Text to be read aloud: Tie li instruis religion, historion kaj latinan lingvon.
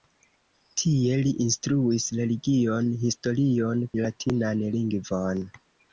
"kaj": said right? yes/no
no